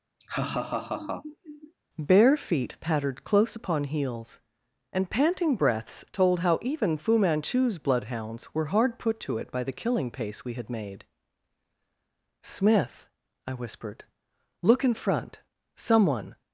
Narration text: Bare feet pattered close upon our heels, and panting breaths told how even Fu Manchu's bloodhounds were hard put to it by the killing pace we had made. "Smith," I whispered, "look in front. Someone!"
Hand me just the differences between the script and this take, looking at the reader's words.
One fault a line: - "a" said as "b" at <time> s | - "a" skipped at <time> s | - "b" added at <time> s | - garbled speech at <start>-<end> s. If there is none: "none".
- "our" skipped at 3.8 s